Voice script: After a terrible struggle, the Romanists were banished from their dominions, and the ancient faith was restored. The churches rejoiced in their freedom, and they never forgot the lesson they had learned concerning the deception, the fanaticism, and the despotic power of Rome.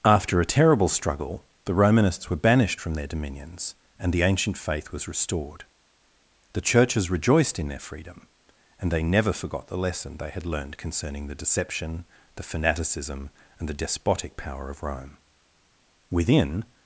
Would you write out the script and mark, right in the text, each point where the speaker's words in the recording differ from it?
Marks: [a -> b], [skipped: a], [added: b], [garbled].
After a terrible struggle, the Romanists were banished from their dominions, and the ancient faith was restored. The churches rejoiced in their freedom, and they never forgot the lesson they had learned concerning the deception, the fanaticism, and the despotic power of Rome. [added: Within]